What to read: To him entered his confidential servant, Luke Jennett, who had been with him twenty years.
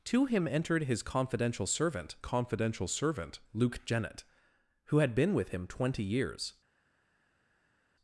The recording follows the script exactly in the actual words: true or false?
false